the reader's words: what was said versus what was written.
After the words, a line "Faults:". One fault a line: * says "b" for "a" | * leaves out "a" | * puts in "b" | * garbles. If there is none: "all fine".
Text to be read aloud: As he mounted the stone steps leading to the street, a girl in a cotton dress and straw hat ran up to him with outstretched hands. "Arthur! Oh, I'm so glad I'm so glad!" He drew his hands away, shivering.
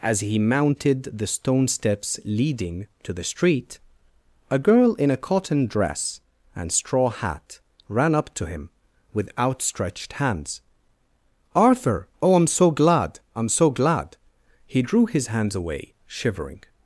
As he mounted the stone steps leading to the street, a girl in a cotton dress and straw hat ran up to him with outstretched hands. "Arthur! Oh, I'm so glad I'm so glad!" He drew his hands away, shivering.
Faults:
all fine